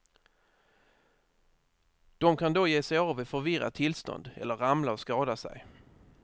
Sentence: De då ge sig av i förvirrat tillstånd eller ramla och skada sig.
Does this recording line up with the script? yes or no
no